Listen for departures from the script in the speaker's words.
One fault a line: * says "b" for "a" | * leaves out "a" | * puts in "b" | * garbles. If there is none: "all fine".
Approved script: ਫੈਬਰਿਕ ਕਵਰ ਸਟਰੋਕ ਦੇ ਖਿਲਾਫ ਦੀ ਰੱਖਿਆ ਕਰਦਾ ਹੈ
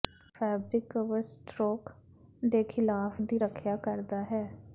all fine